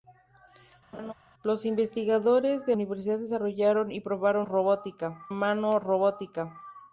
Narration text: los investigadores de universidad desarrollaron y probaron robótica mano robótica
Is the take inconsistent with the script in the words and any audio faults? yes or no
yes